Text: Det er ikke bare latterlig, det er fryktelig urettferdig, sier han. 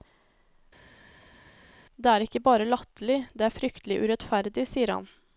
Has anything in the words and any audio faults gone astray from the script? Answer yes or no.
no